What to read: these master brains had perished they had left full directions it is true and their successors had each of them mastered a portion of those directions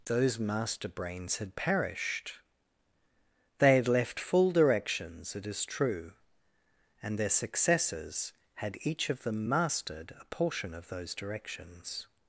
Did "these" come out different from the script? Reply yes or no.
yes